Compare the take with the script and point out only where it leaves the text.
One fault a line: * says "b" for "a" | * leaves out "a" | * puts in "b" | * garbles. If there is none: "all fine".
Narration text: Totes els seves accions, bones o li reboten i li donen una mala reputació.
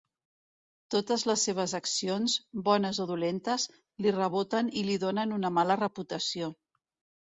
* says "les" for "els"
* puts in "dolentes"